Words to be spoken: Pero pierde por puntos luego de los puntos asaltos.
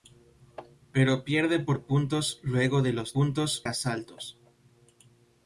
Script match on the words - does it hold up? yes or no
yes